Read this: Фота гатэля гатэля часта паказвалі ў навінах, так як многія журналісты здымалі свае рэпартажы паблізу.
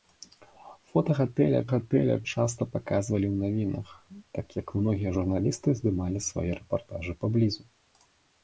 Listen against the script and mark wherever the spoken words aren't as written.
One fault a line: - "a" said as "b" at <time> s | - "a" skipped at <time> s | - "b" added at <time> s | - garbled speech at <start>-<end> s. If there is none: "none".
none